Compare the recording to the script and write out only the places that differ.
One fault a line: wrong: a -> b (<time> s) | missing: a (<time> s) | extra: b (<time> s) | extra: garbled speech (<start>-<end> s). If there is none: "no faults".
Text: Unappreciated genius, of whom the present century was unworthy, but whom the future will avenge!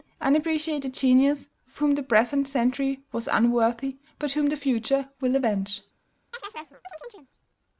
no faults